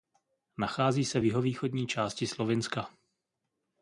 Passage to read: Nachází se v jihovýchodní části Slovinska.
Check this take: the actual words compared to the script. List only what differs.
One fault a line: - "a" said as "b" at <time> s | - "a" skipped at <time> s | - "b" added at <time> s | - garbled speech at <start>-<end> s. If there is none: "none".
none